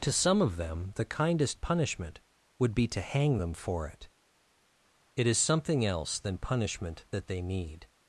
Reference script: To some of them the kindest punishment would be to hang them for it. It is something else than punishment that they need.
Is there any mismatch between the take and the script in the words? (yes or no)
no